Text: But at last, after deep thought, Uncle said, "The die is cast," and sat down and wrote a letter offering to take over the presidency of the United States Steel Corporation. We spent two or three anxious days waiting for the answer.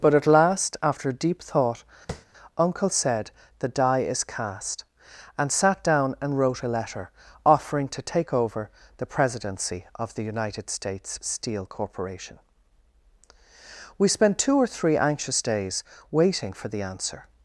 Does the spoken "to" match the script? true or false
true